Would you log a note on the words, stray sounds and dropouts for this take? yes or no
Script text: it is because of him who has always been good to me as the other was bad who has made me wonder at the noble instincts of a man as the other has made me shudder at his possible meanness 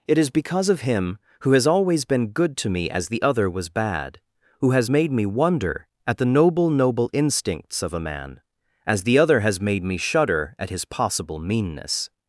yes